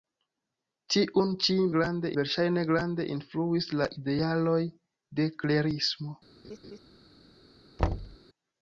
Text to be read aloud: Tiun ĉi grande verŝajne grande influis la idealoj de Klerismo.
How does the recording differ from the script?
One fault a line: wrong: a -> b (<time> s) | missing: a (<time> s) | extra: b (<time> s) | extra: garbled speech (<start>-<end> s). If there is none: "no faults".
no faults